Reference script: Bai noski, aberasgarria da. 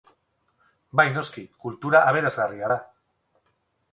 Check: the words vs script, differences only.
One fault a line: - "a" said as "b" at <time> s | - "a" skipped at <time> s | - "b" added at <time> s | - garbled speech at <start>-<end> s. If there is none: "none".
- "kultura" added at 1.6 s